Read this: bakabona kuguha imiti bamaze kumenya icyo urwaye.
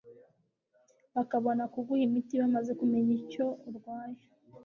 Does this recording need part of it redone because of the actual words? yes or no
no